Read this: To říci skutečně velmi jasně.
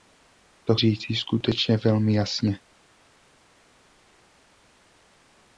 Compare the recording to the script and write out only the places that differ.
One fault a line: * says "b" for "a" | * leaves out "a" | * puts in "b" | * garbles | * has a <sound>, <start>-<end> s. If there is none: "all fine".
all fine